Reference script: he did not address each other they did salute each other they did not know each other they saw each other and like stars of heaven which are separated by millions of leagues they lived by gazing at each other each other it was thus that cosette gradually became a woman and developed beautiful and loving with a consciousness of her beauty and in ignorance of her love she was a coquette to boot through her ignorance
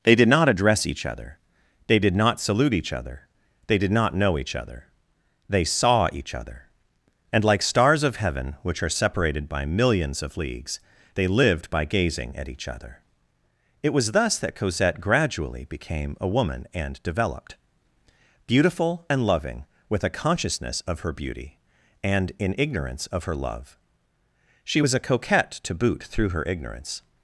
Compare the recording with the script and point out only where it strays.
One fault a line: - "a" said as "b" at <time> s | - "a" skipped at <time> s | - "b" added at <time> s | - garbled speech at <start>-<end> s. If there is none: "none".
- "he" said as "they" at 0.0 s
- "not" added at 2.1 s
- "each other" skipped at 13.0 s